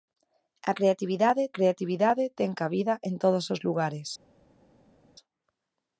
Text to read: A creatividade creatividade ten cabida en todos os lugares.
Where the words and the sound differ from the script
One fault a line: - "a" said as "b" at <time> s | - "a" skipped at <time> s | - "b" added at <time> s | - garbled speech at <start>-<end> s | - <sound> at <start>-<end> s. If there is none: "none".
none